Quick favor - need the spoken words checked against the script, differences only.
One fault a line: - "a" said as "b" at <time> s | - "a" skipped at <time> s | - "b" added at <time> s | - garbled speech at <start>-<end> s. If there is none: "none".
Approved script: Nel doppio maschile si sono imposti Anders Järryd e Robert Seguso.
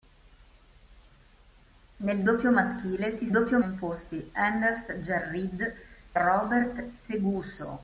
- "sono" said as "doppio" at 3.3 s
- "e" skipped at 5.7 s